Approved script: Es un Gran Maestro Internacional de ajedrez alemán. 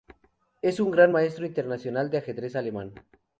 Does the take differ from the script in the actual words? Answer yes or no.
no